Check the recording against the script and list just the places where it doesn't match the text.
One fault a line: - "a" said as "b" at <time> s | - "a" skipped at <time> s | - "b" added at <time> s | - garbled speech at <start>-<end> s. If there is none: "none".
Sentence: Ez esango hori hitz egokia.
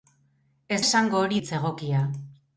none